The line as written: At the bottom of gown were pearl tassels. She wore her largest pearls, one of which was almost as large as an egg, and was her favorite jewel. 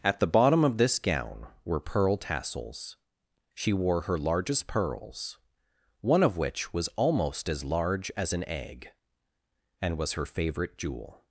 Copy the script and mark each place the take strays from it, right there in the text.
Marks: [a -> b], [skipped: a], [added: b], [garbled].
At the bottom of [added: this] gown were pearl tassels. She wore her largest pearls, one of which was almost as large as an egg, and was her favorite jewel.